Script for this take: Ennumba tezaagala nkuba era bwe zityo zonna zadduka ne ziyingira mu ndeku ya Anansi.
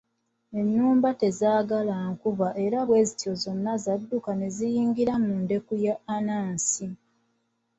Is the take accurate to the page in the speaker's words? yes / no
yes